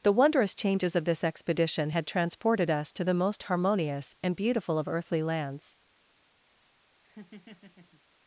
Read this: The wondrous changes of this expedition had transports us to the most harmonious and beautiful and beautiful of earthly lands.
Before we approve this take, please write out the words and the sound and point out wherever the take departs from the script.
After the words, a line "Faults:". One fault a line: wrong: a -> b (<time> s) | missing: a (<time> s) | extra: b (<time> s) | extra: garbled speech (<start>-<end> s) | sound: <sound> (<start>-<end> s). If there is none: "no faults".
The wondrous changes of this expedition had transported us to the most harmonious and beautiful of earthly lands.
Faults:
wrong: transports -> transported (2.1 s)
missing: and beautiful (4.8 s)
sound: laugh (7.0-8.0 s)